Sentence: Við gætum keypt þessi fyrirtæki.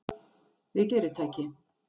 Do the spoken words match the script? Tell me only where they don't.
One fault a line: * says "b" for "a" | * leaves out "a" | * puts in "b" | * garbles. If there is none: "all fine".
* leaves out "gætum keypt þessi"